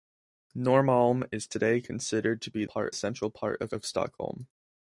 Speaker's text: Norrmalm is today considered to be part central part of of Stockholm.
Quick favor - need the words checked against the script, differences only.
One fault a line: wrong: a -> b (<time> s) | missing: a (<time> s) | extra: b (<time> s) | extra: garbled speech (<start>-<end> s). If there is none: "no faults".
no faults